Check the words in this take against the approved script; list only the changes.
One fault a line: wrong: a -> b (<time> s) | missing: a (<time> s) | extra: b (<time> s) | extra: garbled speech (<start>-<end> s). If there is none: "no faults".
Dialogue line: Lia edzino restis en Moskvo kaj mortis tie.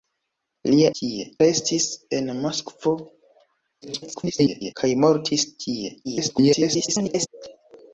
wrong: edzino -> tie (1.0 s)
extra: garbled speech (3.8-4.7 s)
extra: garbled speech (6.0-7.3 s)